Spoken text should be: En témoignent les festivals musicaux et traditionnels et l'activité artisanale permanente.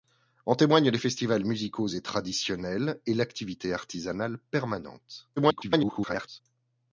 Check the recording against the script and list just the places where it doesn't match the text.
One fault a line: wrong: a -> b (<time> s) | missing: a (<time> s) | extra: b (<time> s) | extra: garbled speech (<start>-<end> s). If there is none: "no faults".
extra: garbled speech (5.4-6.4 s)